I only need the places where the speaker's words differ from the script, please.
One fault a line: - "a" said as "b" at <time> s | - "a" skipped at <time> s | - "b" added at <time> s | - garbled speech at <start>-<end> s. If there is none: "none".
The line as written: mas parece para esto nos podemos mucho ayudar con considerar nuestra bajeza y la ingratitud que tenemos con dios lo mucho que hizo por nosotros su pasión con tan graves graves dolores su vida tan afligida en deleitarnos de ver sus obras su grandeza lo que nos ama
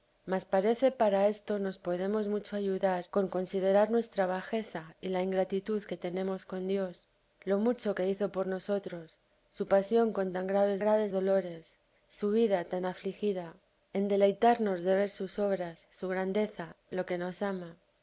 none